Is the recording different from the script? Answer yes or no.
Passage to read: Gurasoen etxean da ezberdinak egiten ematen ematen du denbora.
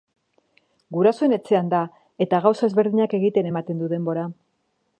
yes